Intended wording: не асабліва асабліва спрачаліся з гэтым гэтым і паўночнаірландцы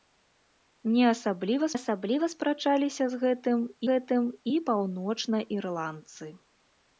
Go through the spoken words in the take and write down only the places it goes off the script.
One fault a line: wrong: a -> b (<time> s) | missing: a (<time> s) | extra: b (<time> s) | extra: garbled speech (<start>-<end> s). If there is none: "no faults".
no faults